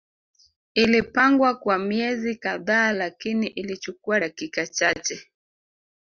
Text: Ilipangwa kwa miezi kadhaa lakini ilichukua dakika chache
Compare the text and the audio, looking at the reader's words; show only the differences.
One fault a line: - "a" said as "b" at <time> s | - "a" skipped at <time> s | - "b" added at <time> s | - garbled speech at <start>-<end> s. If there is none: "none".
none